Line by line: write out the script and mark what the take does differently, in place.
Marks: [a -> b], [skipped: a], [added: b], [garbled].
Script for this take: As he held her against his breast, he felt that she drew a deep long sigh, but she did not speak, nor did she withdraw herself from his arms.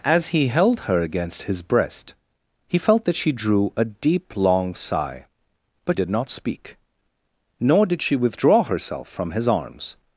As he held her against his breast, he felt that she drew a deep long sigh, but [skipped: she] did not speak, nor did she withdraw herself from his arms.